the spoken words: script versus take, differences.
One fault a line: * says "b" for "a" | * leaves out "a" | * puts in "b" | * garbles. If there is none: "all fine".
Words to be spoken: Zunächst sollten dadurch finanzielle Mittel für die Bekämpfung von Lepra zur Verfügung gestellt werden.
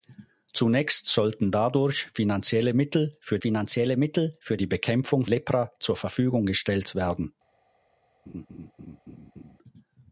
* puts in "finanzielle Mittel für"
* leaves out "von"